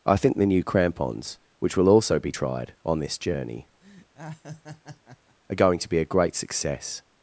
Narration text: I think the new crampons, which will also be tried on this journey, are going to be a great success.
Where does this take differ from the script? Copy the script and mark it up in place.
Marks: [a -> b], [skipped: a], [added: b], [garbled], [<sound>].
I think the new crampons, which will also be tried on this journey, [laugh] are going to be a great success.